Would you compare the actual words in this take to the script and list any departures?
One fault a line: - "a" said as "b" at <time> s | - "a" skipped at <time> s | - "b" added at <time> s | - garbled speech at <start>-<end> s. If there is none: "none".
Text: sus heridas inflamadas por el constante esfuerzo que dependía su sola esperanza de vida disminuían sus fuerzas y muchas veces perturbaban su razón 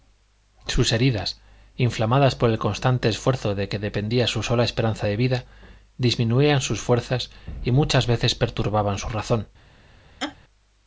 - "de" added at 3.5 s